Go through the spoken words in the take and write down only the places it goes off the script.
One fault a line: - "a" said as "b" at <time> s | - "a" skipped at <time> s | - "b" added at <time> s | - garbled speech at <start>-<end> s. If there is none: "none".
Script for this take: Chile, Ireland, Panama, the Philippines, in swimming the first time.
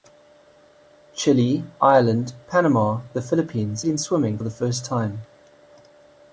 none